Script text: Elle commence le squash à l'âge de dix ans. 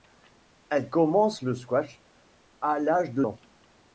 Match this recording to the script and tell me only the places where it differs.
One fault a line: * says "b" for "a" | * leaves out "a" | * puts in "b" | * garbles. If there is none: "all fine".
* leaves out "dix"